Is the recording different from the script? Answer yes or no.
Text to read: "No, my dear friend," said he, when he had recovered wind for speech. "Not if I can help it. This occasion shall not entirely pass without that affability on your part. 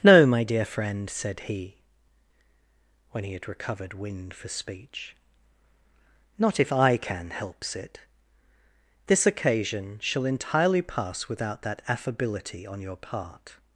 yes